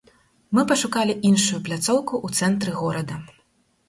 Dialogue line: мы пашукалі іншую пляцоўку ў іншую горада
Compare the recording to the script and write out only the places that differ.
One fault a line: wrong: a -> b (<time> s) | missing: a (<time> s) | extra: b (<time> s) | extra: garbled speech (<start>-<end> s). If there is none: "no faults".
wrong: іншую -> цэнтры (2.4 s)